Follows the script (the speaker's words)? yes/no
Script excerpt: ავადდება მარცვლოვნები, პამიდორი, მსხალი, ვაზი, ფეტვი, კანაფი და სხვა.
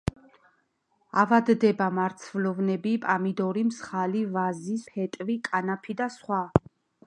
yes